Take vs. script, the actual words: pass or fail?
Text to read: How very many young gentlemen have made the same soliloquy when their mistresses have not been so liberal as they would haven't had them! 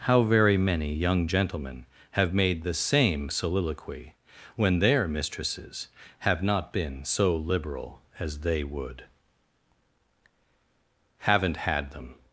pass